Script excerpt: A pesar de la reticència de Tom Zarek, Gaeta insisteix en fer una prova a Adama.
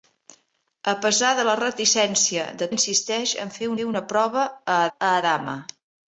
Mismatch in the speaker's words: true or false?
true